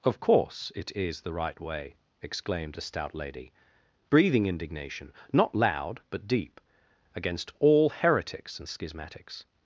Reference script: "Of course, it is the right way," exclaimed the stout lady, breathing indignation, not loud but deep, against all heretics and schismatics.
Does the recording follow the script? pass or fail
fail